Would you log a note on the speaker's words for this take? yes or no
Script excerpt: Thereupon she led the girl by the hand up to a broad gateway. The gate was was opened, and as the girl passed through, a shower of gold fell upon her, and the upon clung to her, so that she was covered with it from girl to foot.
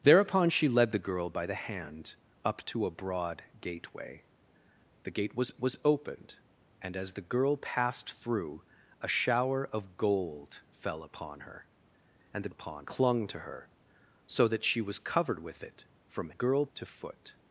no